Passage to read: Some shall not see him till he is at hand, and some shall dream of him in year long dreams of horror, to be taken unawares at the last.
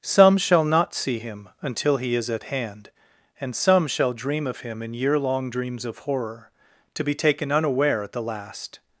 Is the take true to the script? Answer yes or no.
no